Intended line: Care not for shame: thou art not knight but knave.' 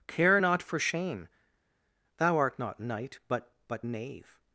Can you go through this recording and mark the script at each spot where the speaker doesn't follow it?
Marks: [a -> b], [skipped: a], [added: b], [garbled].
Care not for shame: thou art not knight but [added: but] knave.'